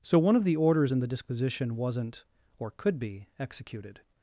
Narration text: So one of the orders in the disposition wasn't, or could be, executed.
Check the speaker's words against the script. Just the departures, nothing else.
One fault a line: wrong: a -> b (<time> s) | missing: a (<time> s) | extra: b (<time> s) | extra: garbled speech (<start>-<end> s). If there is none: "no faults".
no faults